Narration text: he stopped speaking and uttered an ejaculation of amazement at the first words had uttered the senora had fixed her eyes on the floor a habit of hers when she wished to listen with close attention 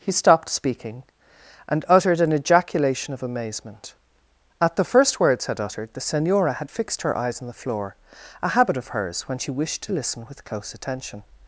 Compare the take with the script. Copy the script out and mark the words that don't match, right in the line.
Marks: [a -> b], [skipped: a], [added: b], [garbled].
he stopped speaking and uttered an ejaculation of amazement at the first words had uttered the senora had fixed her eyes on the floor a habit of hers when she wished to listen with close attention